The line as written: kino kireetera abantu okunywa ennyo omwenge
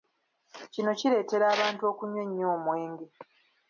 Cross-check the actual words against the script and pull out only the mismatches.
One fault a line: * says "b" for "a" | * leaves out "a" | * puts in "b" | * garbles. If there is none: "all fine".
all fine